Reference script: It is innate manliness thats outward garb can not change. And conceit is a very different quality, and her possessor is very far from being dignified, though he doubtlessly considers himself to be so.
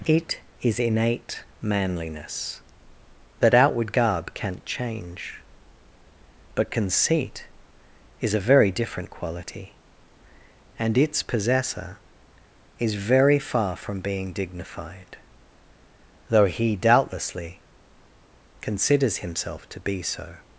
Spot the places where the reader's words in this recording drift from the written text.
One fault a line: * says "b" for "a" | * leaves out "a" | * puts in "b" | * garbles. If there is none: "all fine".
* says "that" for "thats"
* says "But" for "And"
* says "its" for "her"